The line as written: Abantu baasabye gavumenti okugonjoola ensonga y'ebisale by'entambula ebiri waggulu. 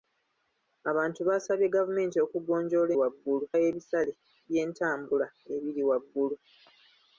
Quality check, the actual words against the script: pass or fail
fail